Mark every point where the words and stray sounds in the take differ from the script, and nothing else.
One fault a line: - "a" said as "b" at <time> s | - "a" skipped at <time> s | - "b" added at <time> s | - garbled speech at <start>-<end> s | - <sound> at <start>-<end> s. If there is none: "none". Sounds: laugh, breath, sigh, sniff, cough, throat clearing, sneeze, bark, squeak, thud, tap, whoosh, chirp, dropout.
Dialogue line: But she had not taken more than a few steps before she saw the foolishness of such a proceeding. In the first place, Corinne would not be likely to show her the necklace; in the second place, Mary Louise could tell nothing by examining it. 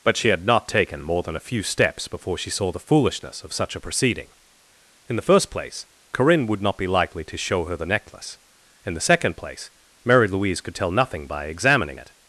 none